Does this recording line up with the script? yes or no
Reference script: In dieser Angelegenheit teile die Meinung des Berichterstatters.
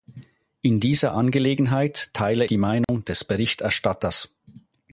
yes